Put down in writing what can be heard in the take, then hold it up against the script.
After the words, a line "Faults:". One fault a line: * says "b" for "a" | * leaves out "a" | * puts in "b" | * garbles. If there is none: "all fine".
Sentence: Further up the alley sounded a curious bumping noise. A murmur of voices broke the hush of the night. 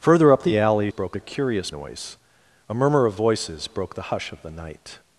Further up the alley broke a curious noise. A murmur of voices broke the hush of the night.
Faults:
* says "broke" for "sounded"
* leaves out "bumping"